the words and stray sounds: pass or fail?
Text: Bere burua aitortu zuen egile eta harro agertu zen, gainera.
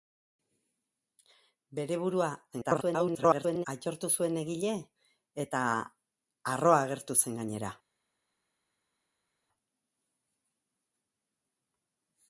fail